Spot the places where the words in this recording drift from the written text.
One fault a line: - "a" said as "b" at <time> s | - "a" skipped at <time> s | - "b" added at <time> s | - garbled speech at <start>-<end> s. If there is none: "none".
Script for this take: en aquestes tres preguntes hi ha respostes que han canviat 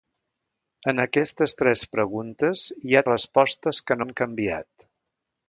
none